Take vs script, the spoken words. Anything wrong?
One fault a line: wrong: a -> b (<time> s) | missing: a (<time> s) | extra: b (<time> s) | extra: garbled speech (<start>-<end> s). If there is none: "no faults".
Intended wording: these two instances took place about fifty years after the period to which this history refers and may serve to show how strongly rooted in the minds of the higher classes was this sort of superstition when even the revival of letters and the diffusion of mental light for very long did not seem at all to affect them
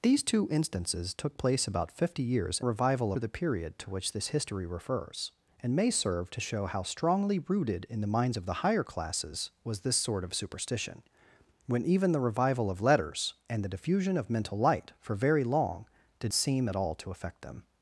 wrong: after -> revival (2.6 s)
missing: not (16.3 s)